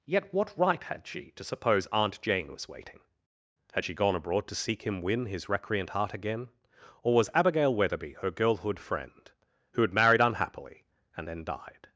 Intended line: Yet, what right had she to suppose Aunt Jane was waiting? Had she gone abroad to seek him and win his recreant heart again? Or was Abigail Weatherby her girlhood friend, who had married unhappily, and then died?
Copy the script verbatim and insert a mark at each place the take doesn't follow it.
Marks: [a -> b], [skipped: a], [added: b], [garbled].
Yet, what right had she to suppose Aunt Jane was waiting? Had she gone abroad to seek him [skipped: and] win his recreant heart again? Or was Abigail Weatherby her girlhood friend, who had married unhappily, and then died?